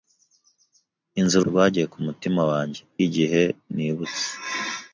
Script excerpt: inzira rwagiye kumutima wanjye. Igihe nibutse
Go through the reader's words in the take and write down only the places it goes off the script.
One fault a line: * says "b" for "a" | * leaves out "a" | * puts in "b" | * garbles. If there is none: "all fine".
all fine